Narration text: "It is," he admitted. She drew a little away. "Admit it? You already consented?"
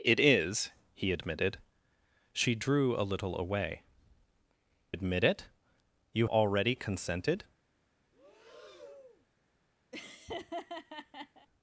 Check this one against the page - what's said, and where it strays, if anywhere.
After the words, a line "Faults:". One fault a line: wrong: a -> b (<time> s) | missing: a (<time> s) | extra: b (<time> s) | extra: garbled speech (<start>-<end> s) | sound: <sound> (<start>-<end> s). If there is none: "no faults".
"It is," he admitted. She drew a little away. "Admit it? You already consented?"
Faults:
sound: breath (8.1-9.3 s)
sound: laugh (9.9-11.5 s)